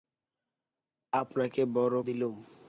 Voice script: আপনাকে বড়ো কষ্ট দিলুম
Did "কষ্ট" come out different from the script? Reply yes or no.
yes